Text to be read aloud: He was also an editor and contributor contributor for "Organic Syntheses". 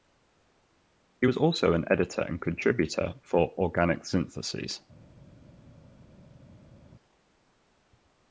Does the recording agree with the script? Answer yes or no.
no